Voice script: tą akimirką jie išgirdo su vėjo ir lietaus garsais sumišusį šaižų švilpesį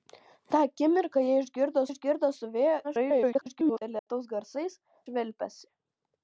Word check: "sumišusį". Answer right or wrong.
wrong